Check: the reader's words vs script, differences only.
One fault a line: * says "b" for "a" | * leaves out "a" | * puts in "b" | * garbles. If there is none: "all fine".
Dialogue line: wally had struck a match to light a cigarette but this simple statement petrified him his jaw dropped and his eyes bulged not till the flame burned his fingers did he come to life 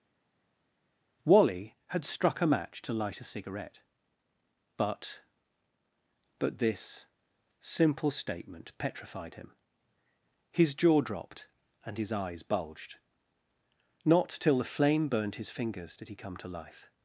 * puts in "but"